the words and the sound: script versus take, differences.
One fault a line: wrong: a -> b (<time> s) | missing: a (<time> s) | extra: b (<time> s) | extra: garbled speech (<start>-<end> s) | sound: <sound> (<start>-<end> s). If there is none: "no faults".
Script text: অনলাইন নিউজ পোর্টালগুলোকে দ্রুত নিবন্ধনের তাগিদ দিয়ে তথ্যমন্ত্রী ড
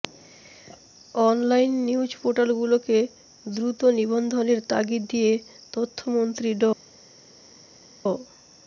no faults